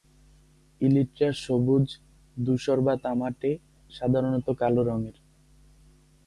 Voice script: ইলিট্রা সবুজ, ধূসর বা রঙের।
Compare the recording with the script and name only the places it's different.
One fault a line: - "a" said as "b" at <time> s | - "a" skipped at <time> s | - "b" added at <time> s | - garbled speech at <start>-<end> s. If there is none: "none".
- "তামাটে সাধারণত কালো" added at 3.0 s